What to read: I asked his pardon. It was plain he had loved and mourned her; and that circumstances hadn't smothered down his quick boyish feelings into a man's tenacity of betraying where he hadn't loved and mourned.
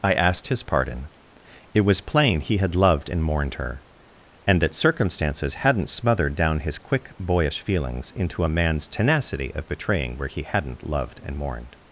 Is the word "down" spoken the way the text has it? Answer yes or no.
yes